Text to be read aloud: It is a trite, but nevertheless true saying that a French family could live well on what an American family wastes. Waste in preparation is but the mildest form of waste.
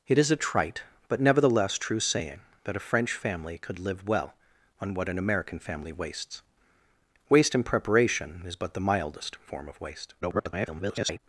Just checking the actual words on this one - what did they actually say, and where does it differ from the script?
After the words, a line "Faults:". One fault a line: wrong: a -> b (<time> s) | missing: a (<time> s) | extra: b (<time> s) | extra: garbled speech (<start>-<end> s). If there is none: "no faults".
It is a trite, but nevertheless true saying that a French family could live well on what an American family wastes. Waste in preparation is but the mildest form of waste. [garbled]
Faults:
extra: garbled speech (10.2-11.2 s)